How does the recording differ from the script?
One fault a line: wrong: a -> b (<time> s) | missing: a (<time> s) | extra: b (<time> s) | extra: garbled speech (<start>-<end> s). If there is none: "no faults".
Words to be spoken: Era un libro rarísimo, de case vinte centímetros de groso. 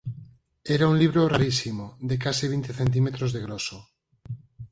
no faults